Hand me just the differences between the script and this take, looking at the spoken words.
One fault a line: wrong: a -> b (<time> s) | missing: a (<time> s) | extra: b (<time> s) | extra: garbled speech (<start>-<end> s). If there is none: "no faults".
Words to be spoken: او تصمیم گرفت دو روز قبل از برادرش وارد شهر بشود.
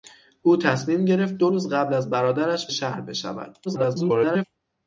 missing: وارد (2.7 s)
extra: garbled speech (3.6-4.4 s)